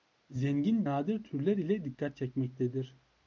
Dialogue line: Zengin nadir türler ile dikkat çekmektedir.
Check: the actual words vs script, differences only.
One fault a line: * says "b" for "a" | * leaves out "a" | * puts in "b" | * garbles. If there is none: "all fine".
all fine